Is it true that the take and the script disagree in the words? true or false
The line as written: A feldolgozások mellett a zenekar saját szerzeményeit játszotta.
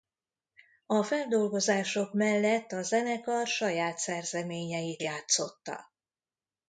false